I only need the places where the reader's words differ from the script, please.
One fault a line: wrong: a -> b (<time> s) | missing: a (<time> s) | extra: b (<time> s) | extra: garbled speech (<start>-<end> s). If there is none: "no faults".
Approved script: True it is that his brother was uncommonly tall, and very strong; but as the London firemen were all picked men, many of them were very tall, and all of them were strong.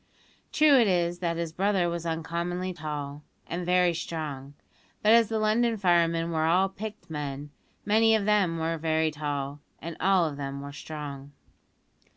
no faults